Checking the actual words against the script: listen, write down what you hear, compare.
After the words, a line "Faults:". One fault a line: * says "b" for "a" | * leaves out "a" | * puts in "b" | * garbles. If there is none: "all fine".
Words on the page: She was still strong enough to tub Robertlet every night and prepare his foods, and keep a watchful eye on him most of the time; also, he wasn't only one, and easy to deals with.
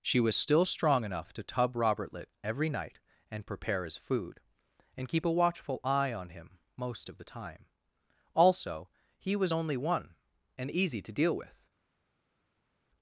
She was still strong enough to tub Robertlet every night and prepare his food, and keep a watchful eye on him most of the time; also, he was only one, and easy to deal with.
Faults:
* says "food" for "foods"
* says "was" for "wasn't"
* says "deal" for "deals"